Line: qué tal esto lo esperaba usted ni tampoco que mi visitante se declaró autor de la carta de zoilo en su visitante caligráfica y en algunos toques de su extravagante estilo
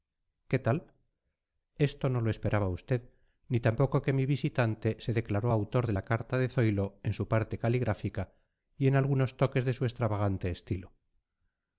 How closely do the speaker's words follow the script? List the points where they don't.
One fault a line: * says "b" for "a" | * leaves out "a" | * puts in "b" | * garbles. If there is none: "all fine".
* puts in "no"
* says "parte" for "visitante"